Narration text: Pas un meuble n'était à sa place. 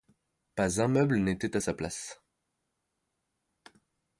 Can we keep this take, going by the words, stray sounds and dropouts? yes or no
yes